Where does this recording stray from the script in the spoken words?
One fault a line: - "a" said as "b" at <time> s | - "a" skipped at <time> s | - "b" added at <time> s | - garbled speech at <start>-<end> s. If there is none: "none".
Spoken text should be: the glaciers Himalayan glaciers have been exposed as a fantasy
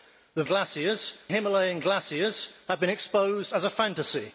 none